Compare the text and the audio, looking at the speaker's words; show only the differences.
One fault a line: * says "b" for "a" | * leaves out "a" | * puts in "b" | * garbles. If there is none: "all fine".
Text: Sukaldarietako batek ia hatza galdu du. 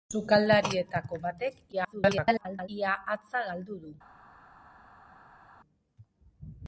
* garbles